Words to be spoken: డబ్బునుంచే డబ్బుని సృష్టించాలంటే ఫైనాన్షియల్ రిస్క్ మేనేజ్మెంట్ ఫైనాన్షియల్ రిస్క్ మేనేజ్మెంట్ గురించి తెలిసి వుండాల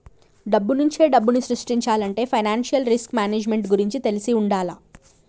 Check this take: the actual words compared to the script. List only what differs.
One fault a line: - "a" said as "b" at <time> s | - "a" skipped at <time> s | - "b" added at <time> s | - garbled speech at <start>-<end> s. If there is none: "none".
- "ఫైనాన్షియల్ రిస్క్ మేనేజ్మెంట్" skipped at 3.7 s